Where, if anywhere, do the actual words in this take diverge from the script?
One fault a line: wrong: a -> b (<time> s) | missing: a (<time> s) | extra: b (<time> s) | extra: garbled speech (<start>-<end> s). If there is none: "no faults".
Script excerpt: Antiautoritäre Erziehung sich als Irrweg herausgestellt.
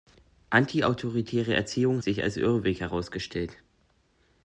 no faults